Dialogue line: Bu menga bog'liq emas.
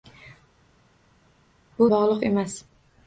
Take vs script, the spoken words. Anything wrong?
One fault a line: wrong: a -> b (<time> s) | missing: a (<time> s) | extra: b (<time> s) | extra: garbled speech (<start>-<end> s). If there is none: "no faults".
missing: menga (1.9 s)